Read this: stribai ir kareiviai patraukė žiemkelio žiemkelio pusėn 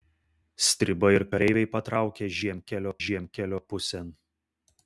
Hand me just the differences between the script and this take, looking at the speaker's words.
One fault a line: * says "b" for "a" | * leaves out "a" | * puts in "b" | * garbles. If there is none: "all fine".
all fine